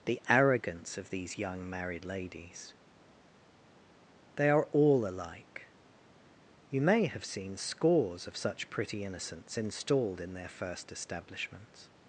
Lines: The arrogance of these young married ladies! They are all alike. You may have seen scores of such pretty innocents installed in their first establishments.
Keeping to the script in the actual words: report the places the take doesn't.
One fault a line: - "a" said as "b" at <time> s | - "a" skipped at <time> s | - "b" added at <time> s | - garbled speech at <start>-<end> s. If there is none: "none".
none